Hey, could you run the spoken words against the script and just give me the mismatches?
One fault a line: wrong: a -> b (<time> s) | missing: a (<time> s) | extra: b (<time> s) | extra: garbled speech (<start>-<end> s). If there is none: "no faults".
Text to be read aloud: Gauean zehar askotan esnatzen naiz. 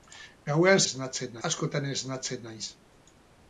wrong: zehar -> esnatzen (0.9 s)